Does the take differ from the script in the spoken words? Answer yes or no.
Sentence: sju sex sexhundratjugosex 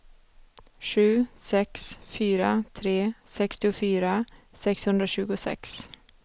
yes